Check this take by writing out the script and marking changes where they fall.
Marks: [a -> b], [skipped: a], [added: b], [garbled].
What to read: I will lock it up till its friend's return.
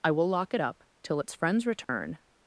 I will lock it up till its friend's return.